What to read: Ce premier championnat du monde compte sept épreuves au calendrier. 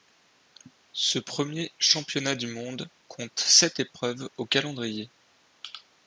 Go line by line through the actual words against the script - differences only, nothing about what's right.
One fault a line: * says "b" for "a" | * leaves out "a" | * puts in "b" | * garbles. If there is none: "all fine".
all fine